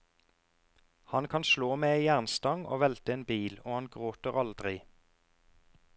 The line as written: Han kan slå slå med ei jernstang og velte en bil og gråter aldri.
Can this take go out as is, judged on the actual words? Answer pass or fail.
fail